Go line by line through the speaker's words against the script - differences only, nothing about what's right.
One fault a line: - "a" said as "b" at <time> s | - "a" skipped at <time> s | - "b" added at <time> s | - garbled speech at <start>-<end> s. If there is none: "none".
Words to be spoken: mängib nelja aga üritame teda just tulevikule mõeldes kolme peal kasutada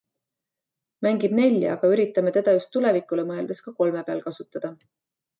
- "ka" added at 3.6 s